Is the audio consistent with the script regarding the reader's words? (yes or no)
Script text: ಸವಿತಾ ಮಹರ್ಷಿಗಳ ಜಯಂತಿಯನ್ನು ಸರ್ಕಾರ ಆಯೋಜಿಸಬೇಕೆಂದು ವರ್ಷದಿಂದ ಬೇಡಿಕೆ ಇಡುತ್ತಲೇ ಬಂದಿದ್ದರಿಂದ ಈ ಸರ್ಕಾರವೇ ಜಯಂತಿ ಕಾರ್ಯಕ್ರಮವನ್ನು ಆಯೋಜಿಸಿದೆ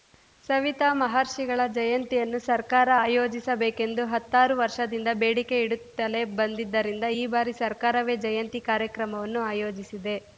no